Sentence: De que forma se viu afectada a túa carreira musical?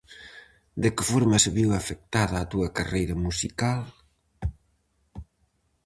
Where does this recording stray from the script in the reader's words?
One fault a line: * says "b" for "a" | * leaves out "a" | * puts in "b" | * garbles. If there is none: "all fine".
all fine